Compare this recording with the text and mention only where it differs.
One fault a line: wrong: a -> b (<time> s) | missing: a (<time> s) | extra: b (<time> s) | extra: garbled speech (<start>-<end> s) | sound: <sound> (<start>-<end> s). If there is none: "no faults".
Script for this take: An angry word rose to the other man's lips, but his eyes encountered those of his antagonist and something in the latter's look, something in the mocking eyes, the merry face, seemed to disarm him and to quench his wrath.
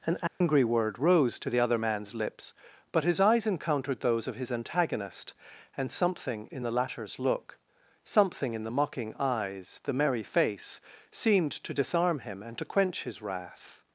sound: dropout (0.3-0.4 s)